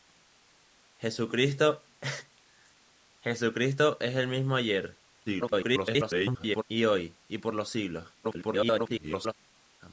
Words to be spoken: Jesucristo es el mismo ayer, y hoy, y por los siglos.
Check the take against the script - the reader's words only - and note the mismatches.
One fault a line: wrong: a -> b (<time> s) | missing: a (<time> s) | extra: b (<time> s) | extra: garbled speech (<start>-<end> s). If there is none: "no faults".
extra: garbled speech (5.3-6.6 s)
extra: garbled speech (8.2-9.3 s)